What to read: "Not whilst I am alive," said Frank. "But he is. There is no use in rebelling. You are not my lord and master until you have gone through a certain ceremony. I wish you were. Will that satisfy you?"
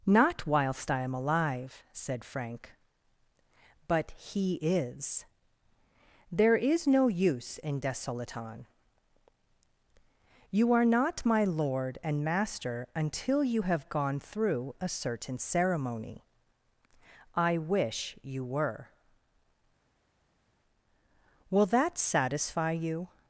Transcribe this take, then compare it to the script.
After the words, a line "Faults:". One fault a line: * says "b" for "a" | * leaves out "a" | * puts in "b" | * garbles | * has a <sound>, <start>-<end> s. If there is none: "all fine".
"Not whilst I am alive," said Frank. "But he is. There is no use in desolaton. You are not my lord and master until you have gone through a certain ceremony. I wish you were. Will that satisfy you?"
Faults:
* says "desolaton" for "rebelling"